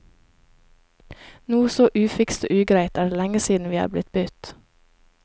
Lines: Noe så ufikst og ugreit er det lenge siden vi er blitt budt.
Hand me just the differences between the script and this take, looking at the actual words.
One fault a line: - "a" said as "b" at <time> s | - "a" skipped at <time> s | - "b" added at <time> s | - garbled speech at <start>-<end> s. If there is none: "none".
none